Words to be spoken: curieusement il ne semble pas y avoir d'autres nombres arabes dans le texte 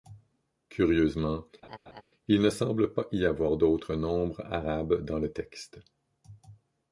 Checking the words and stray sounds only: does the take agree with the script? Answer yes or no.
no